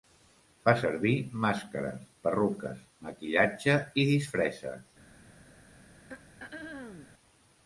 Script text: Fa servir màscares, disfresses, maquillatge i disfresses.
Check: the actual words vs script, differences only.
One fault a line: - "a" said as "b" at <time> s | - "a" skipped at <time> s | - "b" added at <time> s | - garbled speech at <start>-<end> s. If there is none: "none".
- "disfresses" said as "perruques" at 2.2 s